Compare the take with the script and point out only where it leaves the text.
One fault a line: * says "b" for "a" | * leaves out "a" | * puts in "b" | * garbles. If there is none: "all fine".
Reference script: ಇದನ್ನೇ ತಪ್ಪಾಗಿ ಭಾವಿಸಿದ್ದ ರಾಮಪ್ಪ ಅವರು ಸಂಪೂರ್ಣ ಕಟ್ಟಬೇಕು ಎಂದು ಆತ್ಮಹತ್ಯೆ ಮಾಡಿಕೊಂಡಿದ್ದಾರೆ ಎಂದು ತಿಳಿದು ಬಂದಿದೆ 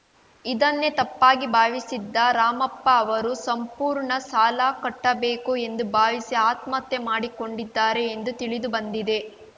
* puts in "ಸಾಲ"
* puts in "ಭಾವಿಸಿ"